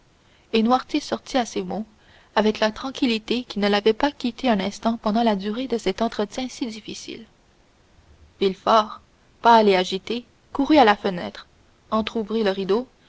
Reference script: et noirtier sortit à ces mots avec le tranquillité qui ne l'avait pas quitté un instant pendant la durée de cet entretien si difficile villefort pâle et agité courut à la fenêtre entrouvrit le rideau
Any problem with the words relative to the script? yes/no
yes